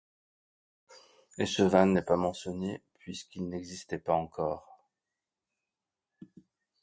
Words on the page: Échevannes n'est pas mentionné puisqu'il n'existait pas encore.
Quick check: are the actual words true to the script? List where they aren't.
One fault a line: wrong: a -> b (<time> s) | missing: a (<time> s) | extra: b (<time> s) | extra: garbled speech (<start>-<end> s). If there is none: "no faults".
no faults